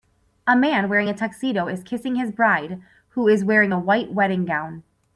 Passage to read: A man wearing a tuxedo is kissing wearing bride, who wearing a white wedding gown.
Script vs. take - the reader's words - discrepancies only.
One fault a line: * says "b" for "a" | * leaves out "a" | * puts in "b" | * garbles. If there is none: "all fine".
* says "his" for "wearing"
* puts in "is"